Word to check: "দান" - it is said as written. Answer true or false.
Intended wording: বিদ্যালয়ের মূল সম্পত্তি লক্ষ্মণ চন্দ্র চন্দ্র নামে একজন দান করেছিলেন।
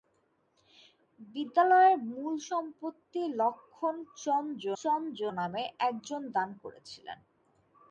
true